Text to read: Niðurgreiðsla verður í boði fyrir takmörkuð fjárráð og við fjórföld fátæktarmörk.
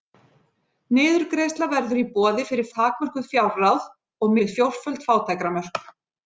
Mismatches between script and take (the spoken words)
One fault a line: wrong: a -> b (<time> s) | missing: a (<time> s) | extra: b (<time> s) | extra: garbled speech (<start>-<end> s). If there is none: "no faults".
no faults